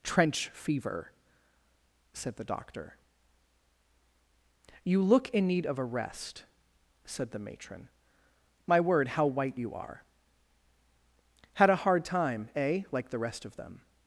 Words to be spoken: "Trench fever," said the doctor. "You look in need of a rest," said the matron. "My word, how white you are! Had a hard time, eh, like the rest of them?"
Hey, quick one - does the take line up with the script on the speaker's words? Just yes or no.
yes